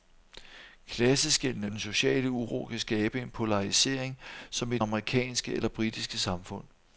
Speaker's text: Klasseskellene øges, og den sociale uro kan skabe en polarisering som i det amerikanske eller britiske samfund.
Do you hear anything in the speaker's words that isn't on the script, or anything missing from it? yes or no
yes